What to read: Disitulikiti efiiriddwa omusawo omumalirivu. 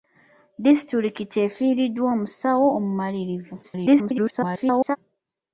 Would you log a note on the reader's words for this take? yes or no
yes